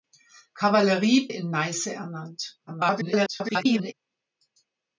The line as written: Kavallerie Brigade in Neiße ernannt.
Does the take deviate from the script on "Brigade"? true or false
true